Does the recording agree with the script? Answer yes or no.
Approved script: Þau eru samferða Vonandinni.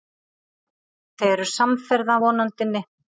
yes